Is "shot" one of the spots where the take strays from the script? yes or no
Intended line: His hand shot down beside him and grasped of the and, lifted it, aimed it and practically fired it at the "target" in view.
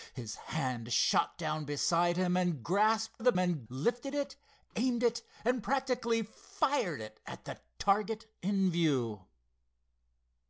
no